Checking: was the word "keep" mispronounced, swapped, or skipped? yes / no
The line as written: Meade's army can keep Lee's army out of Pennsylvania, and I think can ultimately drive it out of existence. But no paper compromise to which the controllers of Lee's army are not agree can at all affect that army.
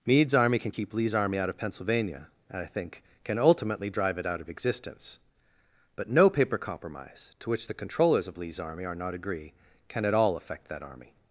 no